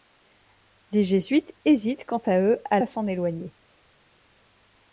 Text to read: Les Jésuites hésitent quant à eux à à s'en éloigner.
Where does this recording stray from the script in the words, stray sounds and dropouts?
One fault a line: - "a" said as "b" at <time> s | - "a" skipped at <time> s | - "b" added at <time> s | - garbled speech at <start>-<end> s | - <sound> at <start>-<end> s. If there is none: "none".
none